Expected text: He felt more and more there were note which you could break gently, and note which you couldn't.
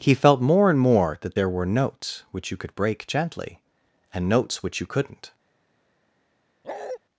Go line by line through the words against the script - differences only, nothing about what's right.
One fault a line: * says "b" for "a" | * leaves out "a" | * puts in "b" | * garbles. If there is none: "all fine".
* puts in "that"
* says "notes" for "note"
* says "notes" for "note"